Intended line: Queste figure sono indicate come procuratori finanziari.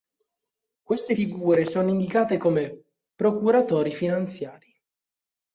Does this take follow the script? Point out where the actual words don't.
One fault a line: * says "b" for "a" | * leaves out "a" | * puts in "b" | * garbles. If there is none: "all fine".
all fine